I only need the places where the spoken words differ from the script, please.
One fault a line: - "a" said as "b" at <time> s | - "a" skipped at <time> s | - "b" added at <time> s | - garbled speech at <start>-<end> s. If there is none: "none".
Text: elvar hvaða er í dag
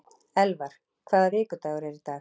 - "vikudagur" added at 1.4 s